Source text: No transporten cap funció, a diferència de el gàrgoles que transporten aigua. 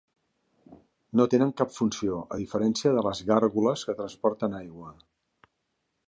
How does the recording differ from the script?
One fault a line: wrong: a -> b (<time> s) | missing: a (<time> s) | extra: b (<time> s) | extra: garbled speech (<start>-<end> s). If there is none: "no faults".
wrong: transporten -> tenen (1.3 s)
wrong: el -> les (3.1 s)